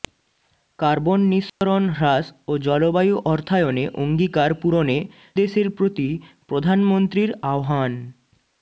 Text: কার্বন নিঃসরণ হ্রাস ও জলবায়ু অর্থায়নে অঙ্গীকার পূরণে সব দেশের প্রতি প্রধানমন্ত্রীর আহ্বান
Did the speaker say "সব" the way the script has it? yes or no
no